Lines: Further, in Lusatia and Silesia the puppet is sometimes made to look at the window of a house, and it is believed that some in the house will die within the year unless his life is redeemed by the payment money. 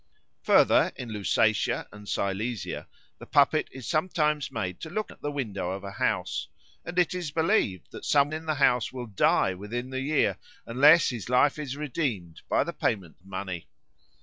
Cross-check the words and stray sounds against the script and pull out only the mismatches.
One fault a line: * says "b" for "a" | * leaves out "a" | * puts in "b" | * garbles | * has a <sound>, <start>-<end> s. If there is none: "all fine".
all fine